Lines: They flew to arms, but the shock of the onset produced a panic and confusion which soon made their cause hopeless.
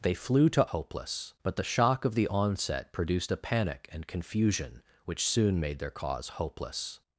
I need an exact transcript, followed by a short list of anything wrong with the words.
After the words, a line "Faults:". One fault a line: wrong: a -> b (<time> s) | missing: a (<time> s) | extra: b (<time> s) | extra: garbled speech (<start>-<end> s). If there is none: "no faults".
They flew to hopeless, but the shock of the onset produced a panic and confusion which soon made their cause hopeless.
Faults:
wrong: arms -> hopeless (0.7 s)